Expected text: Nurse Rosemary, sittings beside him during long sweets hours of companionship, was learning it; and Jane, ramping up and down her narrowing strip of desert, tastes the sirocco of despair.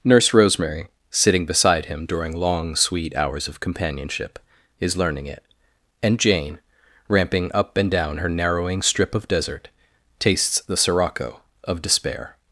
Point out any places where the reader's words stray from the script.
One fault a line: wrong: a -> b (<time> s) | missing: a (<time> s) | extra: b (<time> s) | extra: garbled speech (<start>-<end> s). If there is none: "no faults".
wrong: sittings -> sitting (1.1 s)
wrong: sweets -> sweet (2.8 s)
wrong: was -> is (4.8 s)